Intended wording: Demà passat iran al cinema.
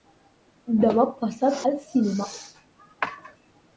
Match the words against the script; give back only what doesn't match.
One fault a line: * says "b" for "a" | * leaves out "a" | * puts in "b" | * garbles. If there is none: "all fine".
* leaves out "iran"